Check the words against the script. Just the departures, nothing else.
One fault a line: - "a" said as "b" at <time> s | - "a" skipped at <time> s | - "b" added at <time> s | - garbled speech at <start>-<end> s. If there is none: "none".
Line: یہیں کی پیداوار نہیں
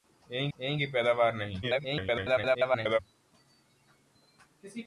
- "یہیں" added at 0.6 s
- garbled speech at 1.6-3.0 s